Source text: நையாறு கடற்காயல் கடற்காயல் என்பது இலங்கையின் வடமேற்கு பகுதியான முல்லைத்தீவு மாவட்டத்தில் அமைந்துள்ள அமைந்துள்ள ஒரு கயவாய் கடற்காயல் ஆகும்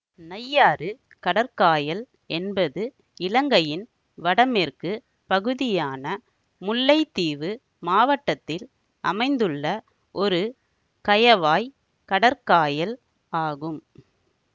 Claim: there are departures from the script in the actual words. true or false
true